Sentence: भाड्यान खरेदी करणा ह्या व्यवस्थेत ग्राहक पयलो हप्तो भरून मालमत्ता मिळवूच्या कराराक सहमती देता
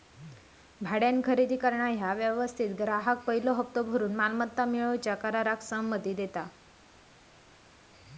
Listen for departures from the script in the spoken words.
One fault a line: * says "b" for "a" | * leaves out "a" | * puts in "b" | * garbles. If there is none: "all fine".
all fine